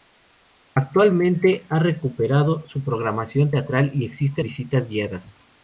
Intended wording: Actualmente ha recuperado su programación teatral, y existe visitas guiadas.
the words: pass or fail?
pass